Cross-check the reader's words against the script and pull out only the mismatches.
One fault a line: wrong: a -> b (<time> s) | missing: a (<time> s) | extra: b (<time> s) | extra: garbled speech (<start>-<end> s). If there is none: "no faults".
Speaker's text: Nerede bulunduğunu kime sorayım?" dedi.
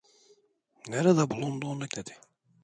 missing: kime sorayım (1.9 s)